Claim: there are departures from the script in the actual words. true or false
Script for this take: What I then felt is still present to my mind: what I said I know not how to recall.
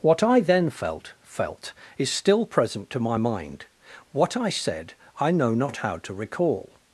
true